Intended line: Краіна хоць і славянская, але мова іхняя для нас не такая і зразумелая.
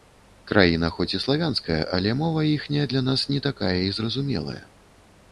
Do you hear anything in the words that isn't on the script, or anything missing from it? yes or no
no